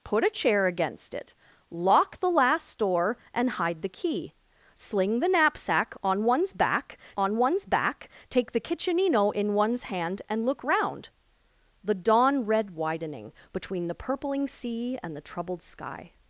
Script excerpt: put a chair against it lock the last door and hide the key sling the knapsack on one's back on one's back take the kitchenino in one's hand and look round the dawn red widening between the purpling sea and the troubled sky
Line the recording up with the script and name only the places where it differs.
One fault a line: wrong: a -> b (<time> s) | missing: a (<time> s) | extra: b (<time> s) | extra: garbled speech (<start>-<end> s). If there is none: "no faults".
no faults